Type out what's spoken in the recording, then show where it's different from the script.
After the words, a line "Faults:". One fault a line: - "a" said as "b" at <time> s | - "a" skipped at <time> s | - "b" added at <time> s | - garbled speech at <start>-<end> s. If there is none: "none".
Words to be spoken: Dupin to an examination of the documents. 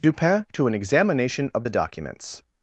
Dupin to an examination of the documents.
Faults:
none